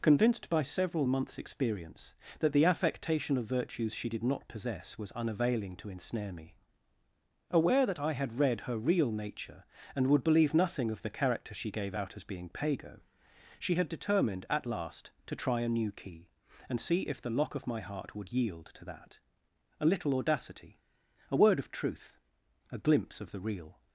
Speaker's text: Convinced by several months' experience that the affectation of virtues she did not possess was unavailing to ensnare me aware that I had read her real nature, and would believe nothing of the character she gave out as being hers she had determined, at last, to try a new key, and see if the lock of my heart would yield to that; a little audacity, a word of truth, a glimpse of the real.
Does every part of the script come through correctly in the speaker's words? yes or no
no